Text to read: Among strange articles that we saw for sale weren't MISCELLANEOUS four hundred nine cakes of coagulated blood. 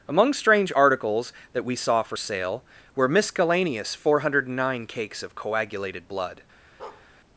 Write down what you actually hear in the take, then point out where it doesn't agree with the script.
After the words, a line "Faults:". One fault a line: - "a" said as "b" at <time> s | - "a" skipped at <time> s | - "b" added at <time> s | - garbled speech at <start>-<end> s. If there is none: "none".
Among strange articles that we saw for sale were MISCELLANEOUS four hundred nine cakes of coagulated blood.
Faults:
- "weren't" said as "were" at 2.9 s